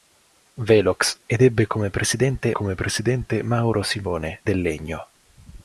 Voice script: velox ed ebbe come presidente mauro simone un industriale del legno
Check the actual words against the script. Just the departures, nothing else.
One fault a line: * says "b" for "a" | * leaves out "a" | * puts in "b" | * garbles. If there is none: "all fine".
* puts in "come presidente"
* leaves out "un industriale"